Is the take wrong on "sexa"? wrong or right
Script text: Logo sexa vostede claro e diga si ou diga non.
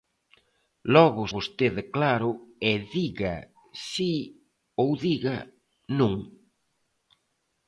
wrong